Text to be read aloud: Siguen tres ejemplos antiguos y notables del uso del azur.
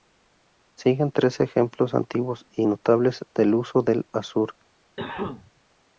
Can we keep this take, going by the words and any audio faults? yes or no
no